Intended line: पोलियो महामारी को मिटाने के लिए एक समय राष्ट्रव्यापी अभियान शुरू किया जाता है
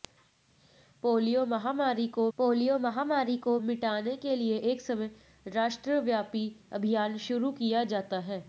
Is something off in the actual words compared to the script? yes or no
yes